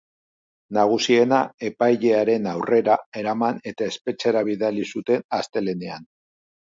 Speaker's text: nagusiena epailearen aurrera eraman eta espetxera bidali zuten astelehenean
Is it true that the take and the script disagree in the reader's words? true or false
false